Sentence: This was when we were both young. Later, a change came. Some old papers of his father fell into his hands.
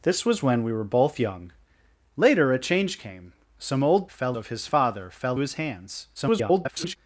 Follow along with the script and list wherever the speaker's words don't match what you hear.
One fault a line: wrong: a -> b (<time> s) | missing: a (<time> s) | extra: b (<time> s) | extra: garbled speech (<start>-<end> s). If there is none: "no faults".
wrong: papers -> fell (4.1 s)
missing: into (5.4 s)
extra: garbled speech (6.1-7.0 s)